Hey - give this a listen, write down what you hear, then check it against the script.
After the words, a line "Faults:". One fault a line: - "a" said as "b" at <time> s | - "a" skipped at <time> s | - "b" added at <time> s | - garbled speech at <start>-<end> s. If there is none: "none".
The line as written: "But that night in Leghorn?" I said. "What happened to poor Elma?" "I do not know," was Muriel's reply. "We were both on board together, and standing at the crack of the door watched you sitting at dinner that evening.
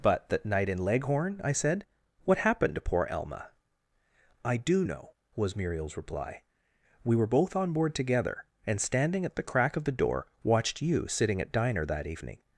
"But that night in Leghorn?" I said. "What happened to poor Elma?" "I do know," was Muriel's reply. "We were both on board together, and standing at the crack of the door watched you sitting at diner that evening.
Faults:
- "not" skipped at 4.8 s
- "dinner" said as "diner" at 11.5 s